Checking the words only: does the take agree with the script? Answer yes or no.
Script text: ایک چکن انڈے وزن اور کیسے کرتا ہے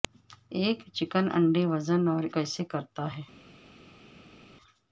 yes